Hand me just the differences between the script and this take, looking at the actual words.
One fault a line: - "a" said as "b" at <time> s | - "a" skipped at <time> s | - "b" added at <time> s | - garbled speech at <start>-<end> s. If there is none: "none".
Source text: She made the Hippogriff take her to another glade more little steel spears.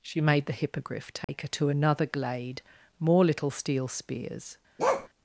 none